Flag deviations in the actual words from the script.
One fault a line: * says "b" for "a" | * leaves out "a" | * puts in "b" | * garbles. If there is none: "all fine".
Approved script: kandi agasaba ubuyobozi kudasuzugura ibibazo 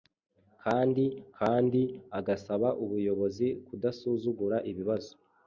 * puts in "kandi"